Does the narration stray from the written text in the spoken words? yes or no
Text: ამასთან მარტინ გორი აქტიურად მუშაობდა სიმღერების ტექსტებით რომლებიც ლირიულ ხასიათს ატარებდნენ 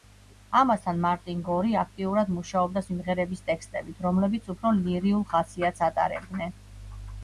yes